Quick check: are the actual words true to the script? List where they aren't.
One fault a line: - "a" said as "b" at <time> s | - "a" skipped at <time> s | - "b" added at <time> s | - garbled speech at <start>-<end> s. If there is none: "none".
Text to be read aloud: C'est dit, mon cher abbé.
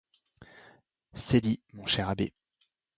none